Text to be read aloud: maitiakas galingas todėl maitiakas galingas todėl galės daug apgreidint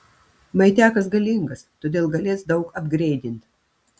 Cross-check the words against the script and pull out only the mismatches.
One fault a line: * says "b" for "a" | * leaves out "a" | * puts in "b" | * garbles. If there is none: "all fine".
* leaves out "maitiakas galingas todėl"